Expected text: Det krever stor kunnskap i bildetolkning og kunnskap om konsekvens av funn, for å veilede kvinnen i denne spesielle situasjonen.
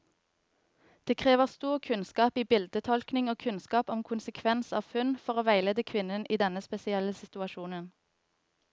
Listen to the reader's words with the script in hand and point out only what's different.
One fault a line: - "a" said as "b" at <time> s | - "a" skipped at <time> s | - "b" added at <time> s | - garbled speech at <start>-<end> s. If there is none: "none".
none